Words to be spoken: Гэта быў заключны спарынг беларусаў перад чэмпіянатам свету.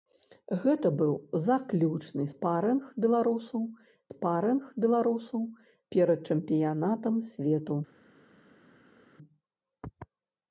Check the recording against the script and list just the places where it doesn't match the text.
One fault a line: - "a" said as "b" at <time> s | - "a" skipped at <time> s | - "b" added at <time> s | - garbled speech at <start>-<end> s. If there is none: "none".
- "спарынг беларусаў" added at 4.1 s